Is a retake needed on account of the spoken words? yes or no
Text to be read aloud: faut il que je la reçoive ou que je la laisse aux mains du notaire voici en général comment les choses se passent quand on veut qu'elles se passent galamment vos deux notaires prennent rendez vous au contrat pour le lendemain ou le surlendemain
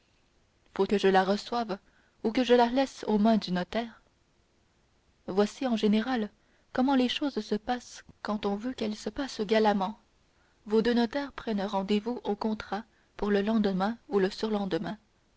yes